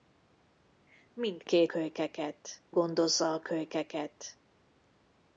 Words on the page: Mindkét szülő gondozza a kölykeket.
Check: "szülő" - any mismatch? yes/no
yes